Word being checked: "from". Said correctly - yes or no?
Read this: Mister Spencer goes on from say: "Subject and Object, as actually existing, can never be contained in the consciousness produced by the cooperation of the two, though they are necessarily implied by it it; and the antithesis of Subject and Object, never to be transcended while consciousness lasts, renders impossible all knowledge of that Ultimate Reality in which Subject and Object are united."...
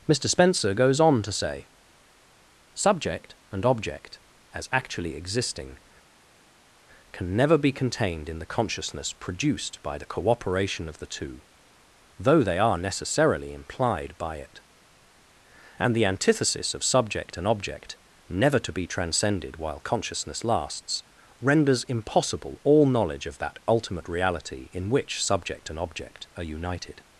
no